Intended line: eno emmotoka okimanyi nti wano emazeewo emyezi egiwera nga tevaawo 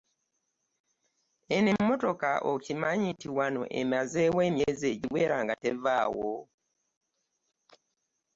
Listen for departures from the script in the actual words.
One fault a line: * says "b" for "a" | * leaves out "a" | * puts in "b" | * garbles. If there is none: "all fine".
all fine